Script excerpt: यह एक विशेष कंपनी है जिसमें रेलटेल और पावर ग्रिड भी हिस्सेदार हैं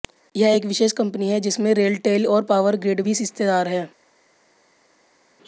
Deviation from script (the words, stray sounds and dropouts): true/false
false